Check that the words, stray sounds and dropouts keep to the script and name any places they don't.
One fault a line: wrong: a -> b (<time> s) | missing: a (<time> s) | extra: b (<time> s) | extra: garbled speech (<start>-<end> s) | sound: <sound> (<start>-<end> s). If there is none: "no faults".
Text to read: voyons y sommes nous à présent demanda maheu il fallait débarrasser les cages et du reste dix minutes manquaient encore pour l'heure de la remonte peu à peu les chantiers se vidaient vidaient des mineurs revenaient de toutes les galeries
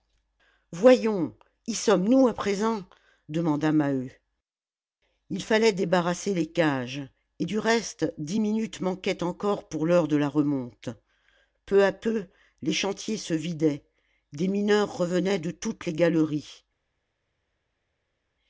missing: vidaient (13.8 s)